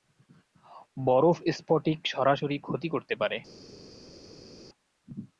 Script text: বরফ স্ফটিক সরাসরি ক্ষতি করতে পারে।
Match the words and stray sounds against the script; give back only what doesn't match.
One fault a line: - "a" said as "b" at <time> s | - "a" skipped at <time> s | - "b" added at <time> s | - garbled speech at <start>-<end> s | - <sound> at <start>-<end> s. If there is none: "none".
none